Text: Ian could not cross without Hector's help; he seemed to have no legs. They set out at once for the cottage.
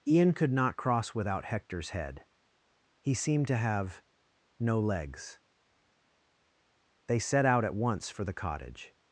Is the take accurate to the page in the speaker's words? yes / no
no